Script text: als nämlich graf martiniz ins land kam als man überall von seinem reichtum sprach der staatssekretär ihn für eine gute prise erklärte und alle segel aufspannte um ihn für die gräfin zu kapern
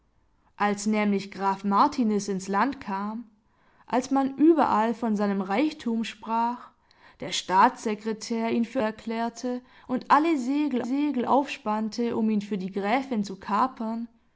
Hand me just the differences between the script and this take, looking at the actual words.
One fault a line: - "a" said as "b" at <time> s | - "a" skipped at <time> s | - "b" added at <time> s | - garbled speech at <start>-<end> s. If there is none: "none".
- "eine gute prise" skipped at 8.8 s
- "segel" added at 10.8 s